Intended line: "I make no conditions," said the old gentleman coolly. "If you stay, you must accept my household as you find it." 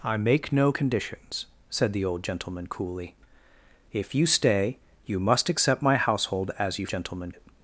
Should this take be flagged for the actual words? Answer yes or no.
yes